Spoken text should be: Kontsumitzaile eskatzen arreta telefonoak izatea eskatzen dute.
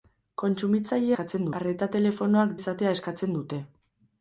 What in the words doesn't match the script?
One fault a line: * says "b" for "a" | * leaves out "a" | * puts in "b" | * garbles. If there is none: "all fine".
all fine